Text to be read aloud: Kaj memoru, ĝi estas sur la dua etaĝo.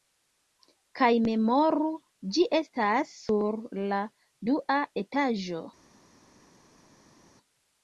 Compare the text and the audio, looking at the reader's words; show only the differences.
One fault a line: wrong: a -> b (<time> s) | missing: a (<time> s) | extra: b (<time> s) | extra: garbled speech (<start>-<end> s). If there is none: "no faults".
no faults